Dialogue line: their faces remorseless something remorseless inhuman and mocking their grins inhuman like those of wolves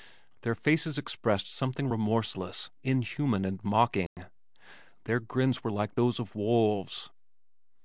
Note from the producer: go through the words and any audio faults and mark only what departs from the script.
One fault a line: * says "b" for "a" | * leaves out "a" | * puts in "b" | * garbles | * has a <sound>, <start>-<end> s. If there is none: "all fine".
* says "expressed" for "remorseless"
* has a dropout, 4.1-4.2 s
* says "were" for "inhuman"